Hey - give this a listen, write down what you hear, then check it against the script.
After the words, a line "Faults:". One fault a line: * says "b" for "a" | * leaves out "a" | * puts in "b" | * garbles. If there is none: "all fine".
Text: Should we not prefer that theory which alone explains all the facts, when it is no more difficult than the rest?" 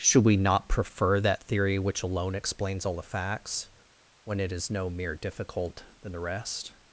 Should we not prefer that theory which alone explains all the facts, when it is no mere difficult than the rest?"
Faults:
* says "mere" for "more"